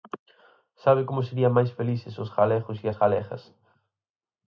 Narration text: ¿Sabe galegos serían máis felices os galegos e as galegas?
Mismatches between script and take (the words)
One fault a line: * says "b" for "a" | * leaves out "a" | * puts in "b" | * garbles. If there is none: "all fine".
* says "como" for "galegos"